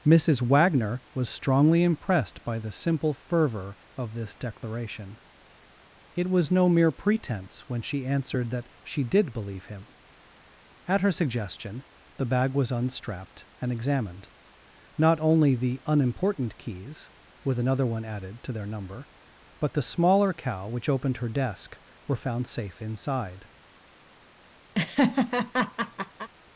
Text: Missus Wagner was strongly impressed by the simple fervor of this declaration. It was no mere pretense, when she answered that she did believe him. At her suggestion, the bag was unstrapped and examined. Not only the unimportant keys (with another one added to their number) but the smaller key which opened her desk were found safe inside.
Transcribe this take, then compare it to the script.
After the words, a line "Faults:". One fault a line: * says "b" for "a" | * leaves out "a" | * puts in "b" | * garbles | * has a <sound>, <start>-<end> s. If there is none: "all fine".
Missus Wagner was strongly impressed by the simple fervor of this declaration. It was no mere pretense, when she answered that she did believe him. At her suggestion, the bag was unstrapped and examined. Not only the unimportant keys (with another one added to their number) but the smaller cow which opened her desk were found safe inside.
Faults:
* says "cow" for "key"
* has a laugh, 24.7-26.3 s